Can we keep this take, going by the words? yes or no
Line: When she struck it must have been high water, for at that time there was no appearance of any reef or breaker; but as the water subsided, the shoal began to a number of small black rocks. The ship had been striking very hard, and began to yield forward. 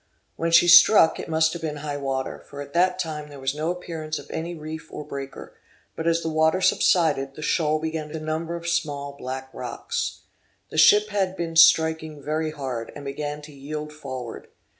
yes